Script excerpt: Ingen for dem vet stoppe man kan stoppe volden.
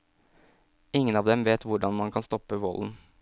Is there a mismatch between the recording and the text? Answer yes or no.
yes